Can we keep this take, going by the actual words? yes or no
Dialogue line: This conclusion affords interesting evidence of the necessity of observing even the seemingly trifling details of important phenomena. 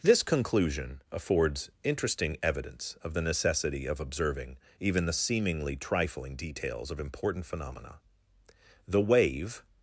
no